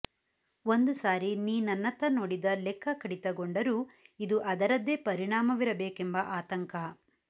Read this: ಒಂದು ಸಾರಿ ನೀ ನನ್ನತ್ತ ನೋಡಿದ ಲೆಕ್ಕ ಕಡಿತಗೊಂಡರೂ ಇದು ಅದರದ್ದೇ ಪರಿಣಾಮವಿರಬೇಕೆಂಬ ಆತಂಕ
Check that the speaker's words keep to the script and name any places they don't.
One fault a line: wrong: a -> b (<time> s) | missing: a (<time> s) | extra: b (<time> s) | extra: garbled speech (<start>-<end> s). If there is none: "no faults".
no faults